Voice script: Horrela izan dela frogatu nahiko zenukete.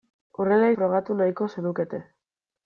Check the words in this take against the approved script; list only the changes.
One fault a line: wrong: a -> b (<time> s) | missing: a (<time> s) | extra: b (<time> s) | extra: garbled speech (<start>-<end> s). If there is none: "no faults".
missing: izan dela (0.7 s)